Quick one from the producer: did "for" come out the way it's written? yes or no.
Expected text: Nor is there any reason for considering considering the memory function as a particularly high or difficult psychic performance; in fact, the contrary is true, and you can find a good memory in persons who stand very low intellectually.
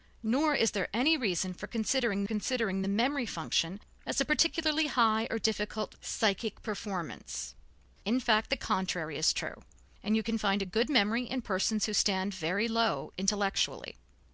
yes